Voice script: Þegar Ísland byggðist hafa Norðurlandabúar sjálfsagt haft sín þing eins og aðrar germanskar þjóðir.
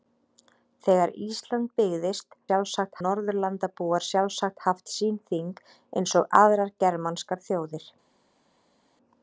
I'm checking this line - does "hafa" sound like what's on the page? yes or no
no